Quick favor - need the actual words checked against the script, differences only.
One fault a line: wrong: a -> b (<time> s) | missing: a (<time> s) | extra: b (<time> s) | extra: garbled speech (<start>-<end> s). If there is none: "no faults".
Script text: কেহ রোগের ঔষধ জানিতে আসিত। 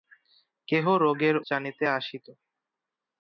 missing: ঔষধ (1.4 s)